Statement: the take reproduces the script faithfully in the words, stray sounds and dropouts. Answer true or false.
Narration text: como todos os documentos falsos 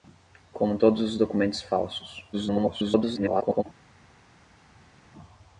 false